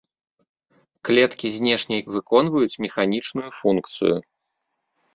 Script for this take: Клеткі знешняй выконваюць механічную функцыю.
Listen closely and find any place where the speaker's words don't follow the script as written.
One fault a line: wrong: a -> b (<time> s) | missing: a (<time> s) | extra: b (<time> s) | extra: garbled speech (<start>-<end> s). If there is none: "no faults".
no faults